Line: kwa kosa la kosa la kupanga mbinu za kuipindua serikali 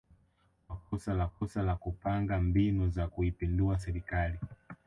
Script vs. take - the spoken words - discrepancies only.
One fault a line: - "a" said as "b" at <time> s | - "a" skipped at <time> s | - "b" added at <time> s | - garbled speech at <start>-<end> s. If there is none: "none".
none